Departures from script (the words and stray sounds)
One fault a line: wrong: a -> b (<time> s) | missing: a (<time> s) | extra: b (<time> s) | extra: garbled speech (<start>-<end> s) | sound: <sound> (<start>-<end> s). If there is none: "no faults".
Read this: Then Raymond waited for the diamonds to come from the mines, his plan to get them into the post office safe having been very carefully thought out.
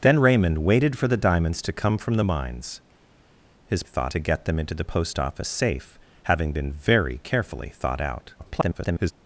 wrong: plan -> thought (3.8 s)
extra: garbled speech (8.4-9.1 s)